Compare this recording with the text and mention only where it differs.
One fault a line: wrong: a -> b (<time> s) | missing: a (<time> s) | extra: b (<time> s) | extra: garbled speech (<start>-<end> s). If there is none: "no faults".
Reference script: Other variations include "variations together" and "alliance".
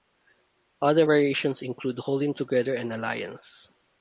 wrong: variations -> holding (2.0 s)